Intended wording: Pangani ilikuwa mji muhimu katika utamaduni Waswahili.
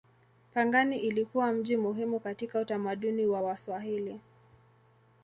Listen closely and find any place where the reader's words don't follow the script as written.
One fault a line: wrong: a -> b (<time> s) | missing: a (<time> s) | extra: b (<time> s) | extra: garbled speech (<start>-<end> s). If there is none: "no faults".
extra: wa (3.2 s)